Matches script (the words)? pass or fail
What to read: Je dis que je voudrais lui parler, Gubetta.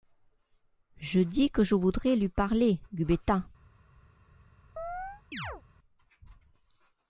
pass